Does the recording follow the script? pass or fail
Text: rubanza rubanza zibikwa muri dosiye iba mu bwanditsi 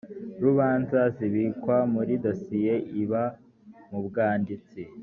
fail